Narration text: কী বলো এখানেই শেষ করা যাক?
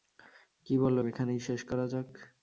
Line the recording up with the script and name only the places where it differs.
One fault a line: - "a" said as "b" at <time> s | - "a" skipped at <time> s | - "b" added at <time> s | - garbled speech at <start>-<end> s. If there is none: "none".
none